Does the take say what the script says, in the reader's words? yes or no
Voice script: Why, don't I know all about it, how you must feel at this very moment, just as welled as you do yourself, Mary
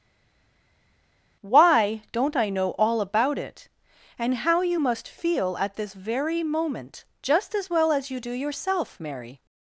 no